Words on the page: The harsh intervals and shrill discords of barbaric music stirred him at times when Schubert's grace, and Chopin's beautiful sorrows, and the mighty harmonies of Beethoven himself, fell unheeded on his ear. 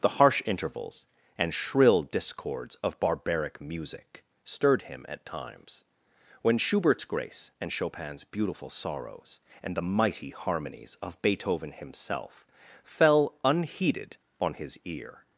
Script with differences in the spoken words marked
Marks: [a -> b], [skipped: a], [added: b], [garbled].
The harsh intervals and shrill discords of barbaric music stirred him at times when Schubert's grace, and Chopin's beautiful sorrows, and the mighty harmonies of Beethoven himself, fell unheeded on his ear.